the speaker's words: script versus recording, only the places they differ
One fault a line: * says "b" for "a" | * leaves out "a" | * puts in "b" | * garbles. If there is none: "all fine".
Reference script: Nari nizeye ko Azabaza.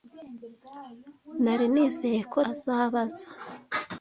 all fine